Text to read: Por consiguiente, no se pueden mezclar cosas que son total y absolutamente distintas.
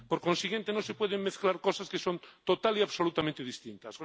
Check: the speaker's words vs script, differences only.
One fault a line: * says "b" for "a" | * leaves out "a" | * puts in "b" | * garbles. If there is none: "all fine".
all fine